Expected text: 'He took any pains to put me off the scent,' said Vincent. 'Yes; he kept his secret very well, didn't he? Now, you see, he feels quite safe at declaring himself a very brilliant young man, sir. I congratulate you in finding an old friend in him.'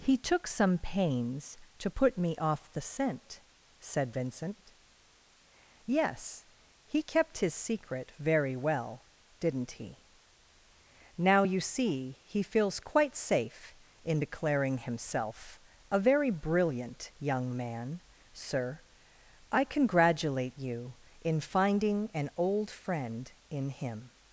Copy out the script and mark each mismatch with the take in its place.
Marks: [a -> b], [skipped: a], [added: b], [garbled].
'He took [any -> some] pains to put me off the scent,' said Vincent. 'Yes; he kept his secret very well, didn't he? Now, you see, he feels quite safe [at -> in] declaring himself a very brilliant young man, sir. I congratulate you in finding an old friend in him.'